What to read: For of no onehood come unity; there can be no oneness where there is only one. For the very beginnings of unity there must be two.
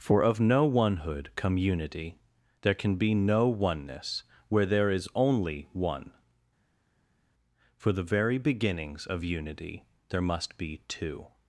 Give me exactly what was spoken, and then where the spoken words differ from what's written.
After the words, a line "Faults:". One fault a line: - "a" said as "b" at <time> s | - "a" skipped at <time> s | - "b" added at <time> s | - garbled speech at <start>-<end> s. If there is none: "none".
For of no onehood come unity; there can be no oneness where there is only one. For the very beginnings of unity there must be two.
Faults:
none